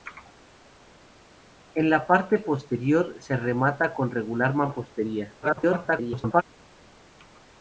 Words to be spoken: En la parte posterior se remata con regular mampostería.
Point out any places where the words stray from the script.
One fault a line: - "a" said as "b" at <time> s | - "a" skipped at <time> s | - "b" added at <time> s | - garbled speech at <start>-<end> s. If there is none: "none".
- garbled speech at 5.4-6.4 s